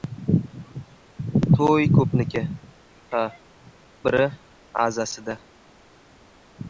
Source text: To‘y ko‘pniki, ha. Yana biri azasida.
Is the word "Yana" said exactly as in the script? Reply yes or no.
no